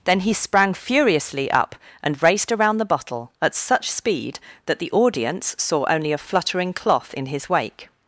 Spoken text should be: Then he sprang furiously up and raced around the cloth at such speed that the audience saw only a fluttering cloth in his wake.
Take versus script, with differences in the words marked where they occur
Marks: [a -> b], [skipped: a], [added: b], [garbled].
Then he sprang furiously up and raced around the [cloth -> bottle] at such speed that the audience saw only a fluttering cloth in his wake.